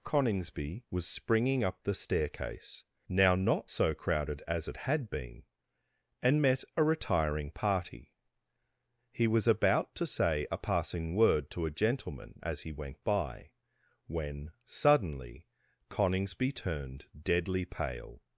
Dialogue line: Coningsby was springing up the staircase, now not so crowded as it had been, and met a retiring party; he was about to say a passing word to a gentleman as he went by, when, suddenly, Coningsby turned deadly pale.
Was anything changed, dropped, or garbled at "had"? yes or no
no